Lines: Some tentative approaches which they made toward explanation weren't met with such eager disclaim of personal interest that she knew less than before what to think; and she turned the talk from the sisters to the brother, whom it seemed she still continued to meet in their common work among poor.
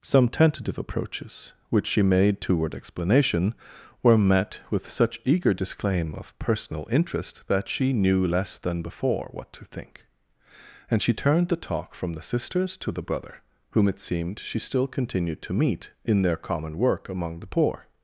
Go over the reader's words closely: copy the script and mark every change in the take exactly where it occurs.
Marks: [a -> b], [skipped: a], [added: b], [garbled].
Some tentative approaches which [they -> she] made toward explanation [weren't -> were] met with such eager disclaim of personal interest that she knew less than before what to think; and she turned the talk from the sisters to the brother, whom it seemed she still continued to meet in their common work among [added: the] poor.